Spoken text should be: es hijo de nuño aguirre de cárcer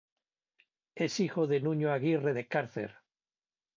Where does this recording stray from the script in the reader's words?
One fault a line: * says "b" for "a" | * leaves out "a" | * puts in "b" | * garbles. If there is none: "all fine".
all fine